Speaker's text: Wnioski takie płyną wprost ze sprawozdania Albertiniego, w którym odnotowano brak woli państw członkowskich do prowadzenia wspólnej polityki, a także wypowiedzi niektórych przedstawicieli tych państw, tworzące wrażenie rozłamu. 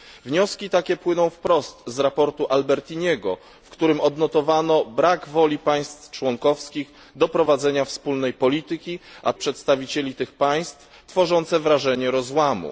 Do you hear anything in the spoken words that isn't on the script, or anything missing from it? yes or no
yes